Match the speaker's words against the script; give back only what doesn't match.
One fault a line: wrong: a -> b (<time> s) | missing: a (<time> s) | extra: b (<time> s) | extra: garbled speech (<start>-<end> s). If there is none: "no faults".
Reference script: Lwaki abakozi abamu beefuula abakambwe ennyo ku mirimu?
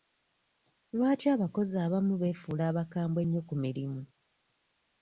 no faults